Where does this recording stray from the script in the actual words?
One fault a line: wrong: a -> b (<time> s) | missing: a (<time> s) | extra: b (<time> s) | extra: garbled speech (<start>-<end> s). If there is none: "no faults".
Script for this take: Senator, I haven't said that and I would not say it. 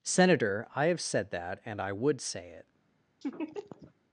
wrong: haven't -> have (0.9 s)
missing: not (2.2 s)